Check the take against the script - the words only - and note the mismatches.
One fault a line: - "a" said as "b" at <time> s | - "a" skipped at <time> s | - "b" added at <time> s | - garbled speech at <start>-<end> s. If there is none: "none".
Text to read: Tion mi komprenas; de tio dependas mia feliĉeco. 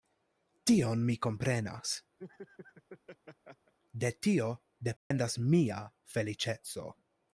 none